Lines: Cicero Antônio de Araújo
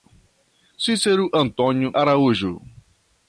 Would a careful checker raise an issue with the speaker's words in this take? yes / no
yes